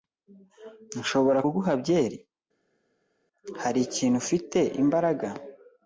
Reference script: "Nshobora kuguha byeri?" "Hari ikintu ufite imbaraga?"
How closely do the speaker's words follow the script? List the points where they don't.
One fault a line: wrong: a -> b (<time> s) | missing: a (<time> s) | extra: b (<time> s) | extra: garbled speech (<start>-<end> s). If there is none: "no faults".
no faults